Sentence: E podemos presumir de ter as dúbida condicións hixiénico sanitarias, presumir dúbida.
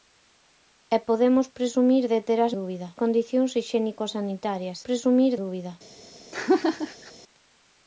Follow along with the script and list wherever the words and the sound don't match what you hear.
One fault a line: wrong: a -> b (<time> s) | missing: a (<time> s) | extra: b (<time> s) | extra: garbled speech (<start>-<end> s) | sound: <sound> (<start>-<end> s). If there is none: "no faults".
sound: laugh (6.3-7.1 s)